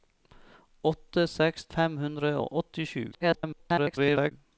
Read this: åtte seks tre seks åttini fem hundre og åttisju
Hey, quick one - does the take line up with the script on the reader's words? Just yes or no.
no